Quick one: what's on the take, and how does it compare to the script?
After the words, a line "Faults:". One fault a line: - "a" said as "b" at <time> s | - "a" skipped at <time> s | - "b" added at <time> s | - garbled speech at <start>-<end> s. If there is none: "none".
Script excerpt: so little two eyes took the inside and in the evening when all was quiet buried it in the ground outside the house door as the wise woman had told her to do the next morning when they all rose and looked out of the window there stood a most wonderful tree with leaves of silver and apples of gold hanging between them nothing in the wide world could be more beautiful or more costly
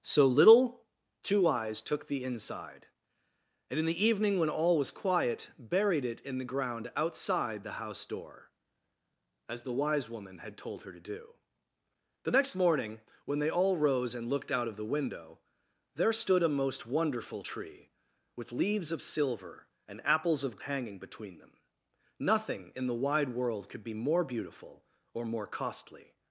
so little two eyes took the inside and in the evening when all was quiet buried it in the ground outside the house door as the wise woman had told her to do the next morning when they all rose and looked out of the window there stood a most wonderful tree with leaves of silver and apples of hanging between them nothing in the wide world could be more beautiful or more costly
Faults:
- "gold" skipped at 20.6 s